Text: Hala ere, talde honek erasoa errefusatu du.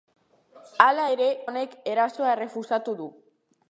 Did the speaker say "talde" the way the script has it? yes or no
no